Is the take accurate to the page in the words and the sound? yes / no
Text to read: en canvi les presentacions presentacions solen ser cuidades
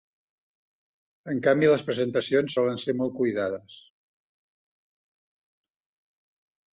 no